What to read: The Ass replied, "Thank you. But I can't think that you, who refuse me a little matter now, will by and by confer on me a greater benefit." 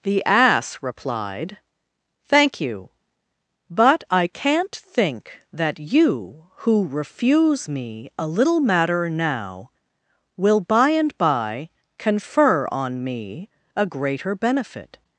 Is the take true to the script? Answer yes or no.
yes